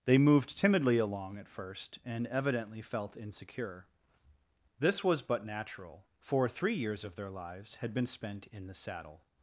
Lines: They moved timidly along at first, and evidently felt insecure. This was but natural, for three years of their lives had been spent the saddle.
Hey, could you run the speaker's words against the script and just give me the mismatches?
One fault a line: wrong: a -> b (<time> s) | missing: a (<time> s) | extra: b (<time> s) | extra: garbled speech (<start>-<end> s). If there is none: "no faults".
extra: in (8.5 s)